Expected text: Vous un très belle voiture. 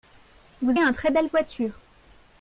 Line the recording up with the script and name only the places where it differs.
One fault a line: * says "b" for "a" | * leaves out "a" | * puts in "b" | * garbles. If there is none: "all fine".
all fine